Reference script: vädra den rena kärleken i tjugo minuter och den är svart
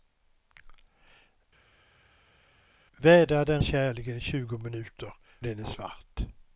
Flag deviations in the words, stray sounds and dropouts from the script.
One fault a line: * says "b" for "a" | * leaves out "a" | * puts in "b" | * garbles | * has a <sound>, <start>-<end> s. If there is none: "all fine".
* leaves out "rena"
* leaves out "och"